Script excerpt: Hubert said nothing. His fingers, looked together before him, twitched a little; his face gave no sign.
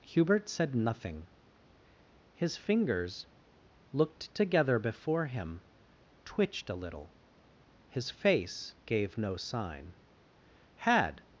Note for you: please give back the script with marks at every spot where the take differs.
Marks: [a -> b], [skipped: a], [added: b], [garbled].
Hubert said nothing. His fingers, looked together before him, twitched a little; his face gave no sign. [added: Had]